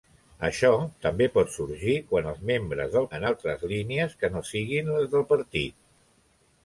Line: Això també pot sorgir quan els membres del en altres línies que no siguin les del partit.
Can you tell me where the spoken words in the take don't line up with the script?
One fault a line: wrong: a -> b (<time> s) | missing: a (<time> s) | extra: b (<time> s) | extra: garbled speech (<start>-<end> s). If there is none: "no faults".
no faults